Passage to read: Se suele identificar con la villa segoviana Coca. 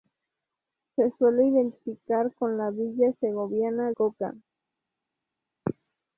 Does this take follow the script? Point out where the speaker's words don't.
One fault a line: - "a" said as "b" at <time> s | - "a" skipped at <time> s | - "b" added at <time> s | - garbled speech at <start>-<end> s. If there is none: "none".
none